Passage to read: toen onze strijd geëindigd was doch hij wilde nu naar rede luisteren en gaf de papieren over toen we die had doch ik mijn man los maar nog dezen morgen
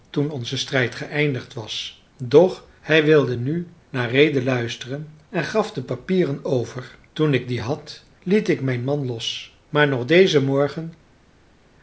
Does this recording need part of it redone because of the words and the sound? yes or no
yes